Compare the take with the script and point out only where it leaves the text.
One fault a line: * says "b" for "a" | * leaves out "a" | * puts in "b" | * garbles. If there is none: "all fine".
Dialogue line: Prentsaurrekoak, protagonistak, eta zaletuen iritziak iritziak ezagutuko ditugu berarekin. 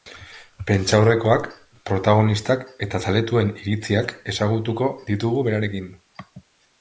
* leaves out "iritziak"